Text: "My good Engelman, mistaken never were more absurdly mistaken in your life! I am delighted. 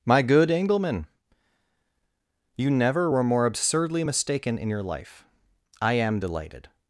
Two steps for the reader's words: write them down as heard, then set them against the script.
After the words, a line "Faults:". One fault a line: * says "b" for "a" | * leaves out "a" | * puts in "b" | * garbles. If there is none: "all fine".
"My good Engelman, you never were more absurdly mistaken in your life! I am delighted.
Faults:
* says "you" for "mistaken"